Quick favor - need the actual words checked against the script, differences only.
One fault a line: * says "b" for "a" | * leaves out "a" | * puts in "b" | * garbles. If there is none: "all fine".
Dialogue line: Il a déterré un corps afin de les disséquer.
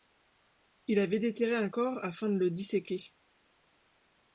* says "avait" for "a"
* says "le" for "les"